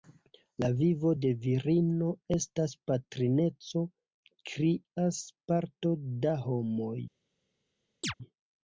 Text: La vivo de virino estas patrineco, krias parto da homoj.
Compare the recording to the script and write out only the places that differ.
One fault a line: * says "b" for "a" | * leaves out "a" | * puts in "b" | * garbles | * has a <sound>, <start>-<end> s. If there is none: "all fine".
* has a chirp, 8.0-8.1 s